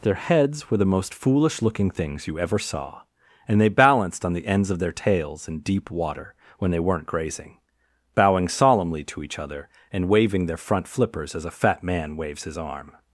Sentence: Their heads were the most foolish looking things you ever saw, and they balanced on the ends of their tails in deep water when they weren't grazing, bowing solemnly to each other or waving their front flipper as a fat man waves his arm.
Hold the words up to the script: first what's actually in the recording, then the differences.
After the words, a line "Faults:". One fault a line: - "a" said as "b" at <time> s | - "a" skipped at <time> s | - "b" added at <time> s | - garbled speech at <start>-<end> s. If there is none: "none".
Their heads were the most foolish looking things you ever saw, and they balanced on the ends of their tails in deep water when they weren't grazing, bowing solemnly to each other and waving their front flippers as a fat man waves his arm.
Faults:
- "or" said as "and" at 9.9 s
- "flipper" said as "flippers" at 10.9 s